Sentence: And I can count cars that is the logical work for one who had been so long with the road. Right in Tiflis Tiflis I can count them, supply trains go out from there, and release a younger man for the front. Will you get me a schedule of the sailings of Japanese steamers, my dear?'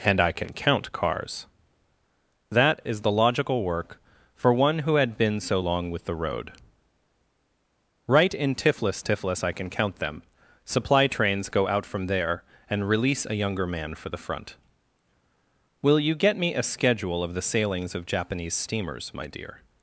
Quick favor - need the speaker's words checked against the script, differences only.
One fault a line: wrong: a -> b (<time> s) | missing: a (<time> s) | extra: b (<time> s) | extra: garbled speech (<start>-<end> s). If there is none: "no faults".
no faults